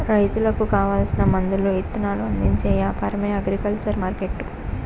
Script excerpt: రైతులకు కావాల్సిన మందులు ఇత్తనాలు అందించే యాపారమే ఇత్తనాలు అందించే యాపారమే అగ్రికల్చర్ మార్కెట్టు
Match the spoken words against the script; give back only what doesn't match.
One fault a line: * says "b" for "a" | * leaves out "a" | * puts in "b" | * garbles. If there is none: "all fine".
* leaves out "ఇత్తనాలు అందించే యాపారమే"